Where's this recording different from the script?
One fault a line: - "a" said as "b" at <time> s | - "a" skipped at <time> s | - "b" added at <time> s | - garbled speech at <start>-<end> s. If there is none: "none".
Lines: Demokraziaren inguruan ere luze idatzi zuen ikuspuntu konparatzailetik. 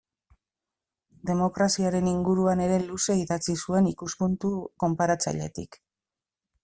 none